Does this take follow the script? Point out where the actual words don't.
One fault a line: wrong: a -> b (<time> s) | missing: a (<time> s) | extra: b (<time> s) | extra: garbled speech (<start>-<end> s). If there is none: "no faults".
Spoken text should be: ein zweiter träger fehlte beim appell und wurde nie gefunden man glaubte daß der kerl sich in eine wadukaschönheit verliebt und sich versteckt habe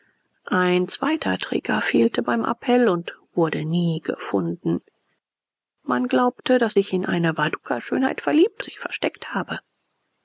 missing: der kerl (6.8 s)
missing: und (8.6 s)